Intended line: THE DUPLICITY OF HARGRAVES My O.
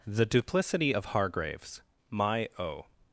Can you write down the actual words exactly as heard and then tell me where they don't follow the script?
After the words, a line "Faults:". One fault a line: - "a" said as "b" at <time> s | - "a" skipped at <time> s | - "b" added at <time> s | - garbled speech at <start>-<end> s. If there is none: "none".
THE DUPLICITY OF HARGRAVES My O.
Faults:
none